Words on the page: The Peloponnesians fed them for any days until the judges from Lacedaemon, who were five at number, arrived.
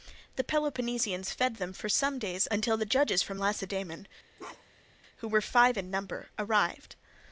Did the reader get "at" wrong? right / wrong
wrong